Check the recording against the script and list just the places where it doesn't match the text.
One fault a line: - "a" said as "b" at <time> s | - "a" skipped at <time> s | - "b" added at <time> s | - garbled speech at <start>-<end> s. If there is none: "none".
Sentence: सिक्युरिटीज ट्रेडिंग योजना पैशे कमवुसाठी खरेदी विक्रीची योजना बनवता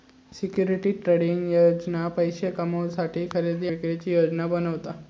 none